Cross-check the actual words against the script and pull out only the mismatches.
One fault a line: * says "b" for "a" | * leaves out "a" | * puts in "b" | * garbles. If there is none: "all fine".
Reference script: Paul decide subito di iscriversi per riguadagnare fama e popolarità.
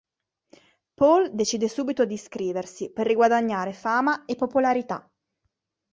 all fine